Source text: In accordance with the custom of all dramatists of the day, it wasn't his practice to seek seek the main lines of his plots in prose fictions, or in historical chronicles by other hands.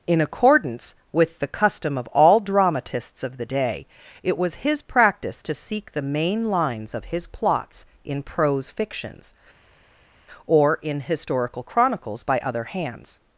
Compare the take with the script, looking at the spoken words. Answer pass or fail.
fail